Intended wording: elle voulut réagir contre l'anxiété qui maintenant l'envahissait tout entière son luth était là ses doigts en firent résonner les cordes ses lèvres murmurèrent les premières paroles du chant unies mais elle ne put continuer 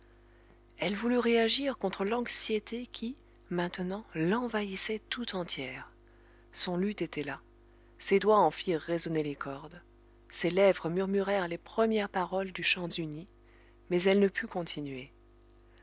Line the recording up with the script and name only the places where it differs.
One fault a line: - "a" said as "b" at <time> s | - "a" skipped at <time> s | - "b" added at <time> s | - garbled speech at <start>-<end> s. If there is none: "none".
none